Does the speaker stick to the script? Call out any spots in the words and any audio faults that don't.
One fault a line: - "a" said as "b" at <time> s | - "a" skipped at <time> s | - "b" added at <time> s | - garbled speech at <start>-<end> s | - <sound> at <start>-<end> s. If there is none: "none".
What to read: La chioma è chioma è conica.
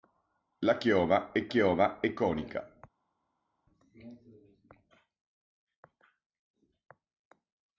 none